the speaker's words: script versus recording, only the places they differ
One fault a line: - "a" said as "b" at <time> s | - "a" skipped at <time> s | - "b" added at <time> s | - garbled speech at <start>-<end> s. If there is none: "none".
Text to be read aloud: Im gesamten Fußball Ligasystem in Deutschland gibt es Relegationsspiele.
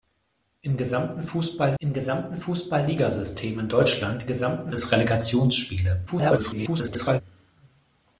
- "im gesamten Fußball" added at 1.8 s
- "gibt" said as "gesamten" at 4.3 s
- garbled speech at 6.1-7.2 s